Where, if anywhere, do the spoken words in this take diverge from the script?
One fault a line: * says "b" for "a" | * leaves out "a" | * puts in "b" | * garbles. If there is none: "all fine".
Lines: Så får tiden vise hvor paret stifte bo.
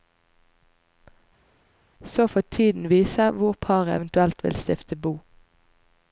* puts in "eventuelt vil"